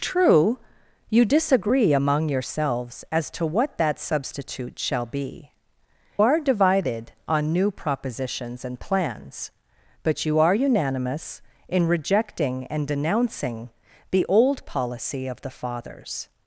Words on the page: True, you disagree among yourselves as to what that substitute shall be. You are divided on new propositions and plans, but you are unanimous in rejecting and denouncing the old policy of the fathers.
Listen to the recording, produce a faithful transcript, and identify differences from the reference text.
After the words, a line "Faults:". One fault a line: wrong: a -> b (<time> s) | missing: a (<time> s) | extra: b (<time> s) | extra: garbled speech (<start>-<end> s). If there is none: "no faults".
True, you disagree among yourselves as to what that substitute shall be. Are divided on new propositions and plans, but you are unanimous in rejecting and denouncing the old policy of the fathers.
Faults:
missing: You (5.5 s)